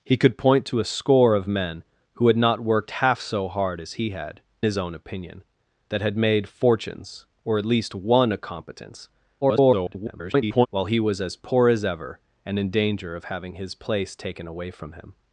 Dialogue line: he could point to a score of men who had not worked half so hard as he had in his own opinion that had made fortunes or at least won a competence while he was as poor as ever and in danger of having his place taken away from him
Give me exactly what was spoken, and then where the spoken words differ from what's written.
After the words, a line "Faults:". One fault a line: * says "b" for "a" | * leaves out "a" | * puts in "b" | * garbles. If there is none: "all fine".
he could point to a score of men who had not worked half so hard as he had his own opinion that had made fortunes or at least won a competence [garbled] while he was as poor as ever and in danger of having his place taken away from him
Faults:
* leaves out "in"
* garbles